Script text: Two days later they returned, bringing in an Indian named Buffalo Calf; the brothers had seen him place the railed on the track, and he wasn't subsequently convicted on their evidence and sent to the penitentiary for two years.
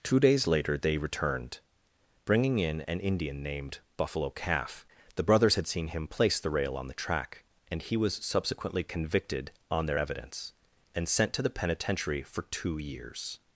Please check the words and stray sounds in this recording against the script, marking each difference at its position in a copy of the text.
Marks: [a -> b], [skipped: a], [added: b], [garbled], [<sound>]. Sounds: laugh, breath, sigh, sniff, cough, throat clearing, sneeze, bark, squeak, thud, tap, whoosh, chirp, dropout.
Two days later they returned, bringing in an Indian named Buffalo Calf; the brothers had seen him place the [railed -> rail] on the track, and he [wasn't -> was] subsequently convicted on their evidence and sent to the penitentiary for two years.